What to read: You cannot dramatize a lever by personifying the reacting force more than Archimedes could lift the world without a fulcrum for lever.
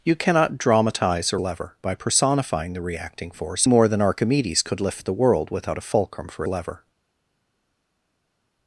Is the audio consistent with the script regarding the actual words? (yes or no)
yes